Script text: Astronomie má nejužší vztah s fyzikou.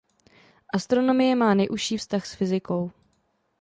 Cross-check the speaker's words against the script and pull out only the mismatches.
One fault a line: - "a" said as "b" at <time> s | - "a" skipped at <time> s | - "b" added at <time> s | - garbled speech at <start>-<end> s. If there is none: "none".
none